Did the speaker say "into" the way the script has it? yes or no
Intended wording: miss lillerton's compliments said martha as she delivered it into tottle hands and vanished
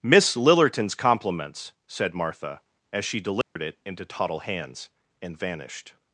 yes